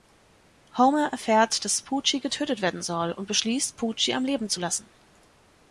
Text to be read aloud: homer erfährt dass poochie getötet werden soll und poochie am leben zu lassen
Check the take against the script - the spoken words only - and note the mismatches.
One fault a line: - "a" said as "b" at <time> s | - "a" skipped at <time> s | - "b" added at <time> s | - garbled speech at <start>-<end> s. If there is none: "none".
- "beschließt" added at 3.3 s